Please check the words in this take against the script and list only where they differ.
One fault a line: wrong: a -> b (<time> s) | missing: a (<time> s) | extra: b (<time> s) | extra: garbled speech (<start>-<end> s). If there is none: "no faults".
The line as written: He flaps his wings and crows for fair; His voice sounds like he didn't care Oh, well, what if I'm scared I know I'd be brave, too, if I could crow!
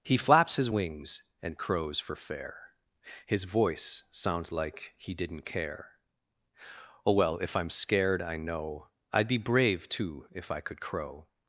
missing: what (7.4 s)